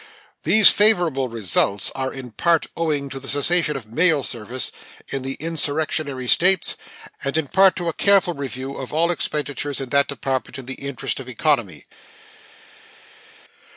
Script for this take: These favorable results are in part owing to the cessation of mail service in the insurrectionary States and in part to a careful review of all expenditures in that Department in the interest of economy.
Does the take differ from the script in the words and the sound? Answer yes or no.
no